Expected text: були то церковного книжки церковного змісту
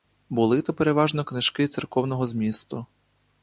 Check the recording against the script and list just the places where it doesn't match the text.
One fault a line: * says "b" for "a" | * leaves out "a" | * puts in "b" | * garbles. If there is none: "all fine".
* says "переважно" for "церковного"